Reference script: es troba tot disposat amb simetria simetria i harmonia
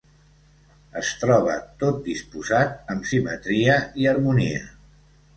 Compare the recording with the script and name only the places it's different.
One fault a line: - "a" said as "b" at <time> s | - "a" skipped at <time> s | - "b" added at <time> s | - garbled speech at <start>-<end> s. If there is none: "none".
- "simetria" skipped at 3.8 s